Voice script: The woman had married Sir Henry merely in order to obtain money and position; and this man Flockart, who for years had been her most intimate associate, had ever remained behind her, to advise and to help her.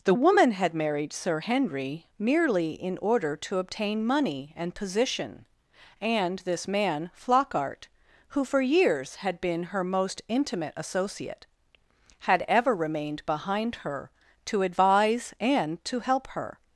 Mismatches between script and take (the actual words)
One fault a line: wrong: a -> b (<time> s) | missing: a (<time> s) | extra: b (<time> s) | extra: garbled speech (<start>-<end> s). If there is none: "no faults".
no faults